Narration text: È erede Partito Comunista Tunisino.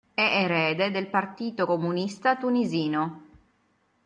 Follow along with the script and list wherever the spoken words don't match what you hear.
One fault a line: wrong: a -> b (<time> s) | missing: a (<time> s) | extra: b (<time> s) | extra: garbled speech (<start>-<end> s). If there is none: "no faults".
extra: del (0.9 s)